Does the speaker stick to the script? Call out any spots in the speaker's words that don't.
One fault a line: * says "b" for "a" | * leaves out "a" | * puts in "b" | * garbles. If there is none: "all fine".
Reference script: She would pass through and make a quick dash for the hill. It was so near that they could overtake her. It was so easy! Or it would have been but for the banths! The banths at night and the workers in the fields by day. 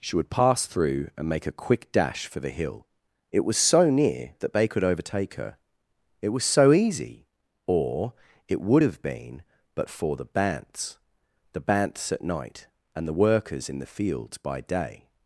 all fine